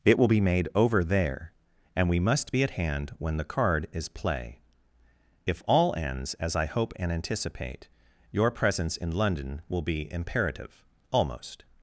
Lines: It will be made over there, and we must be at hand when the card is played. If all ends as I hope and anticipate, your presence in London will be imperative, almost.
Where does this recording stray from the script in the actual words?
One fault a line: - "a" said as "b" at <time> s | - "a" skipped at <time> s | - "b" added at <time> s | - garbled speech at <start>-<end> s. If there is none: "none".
- "played" said as "play" at 4.1 s